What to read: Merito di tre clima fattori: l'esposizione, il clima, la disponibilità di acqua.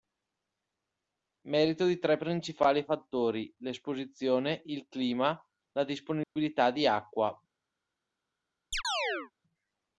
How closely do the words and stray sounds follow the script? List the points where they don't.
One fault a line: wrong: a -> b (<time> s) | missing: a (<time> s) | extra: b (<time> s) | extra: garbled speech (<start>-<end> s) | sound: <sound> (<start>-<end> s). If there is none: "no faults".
wrong: clima -> principali (2.2 s)
sound: dropout (6.2-6.4 s)
sound: chirp (8.7-9.3 s)